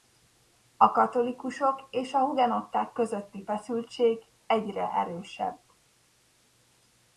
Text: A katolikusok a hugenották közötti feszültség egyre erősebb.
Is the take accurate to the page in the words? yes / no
no